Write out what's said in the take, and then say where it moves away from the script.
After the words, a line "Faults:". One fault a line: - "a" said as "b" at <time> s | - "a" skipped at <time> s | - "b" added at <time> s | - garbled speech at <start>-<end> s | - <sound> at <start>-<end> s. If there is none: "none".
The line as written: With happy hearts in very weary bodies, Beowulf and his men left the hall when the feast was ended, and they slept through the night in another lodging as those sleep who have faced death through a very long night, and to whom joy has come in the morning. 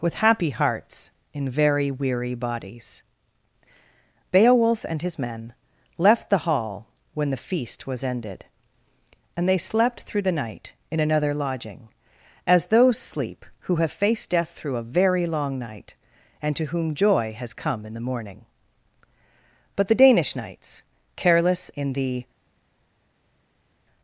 With happy hearts in very weary bodies, Beowulf and his men left the hall when the feast was ended, and they slept through the night in another lodging as those sleep who have faced death through a very long night, and to whom joy has come in the morning. But the Danish knights, careless in the
Faults:
- "But the Danish knights careless in the" added at 19.8 s